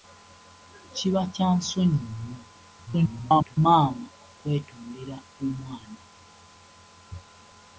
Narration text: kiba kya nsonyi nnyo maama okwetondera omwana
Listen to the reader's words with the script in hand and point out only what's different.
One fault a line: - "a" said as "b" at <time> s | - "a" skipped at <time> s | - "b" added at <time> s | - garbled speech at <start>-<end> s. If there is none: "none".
- garbled speech at 2.9-3.6 s